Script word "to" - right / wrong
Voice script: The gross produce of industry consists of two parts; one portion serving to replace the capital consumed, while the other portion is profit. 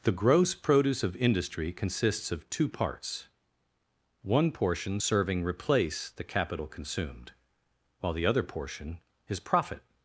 wrong